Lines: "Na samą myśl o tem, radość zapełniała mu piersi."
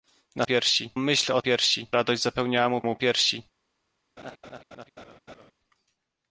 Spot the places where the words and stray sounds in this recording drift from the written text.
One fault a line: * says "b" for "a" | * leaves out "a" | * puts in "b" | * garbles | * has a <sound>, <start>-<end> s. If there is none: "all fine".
* says "piersi" for "samą"
* says "piersi" for "tem"
* puts in "mu"
* has a laugh, 4.2-5.5 s